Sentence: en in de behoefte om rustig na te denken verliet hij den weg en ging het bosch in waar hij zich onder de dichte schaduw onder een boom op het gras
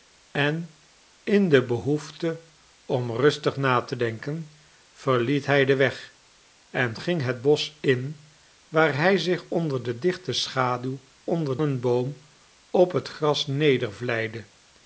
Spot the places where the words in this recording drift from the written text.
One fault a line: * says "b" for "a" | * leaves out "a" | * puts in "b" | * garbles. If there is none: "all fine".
all fine